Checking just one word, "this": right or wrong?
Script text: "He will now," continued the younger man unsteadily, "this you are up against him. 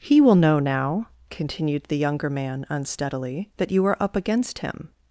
wrong